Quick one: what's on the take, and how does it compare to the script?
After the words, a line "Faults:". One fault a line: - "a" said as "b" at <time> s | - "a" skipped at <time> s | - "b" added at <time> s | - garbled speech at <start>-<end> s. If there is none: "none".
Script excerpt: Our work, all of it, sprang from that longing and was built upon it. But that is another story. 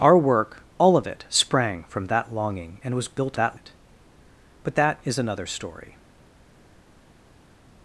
Our work, all of it, sprang from that longing and was built that it. But that is another story.
Faults:
- "upon" said as "that" at 3.3 s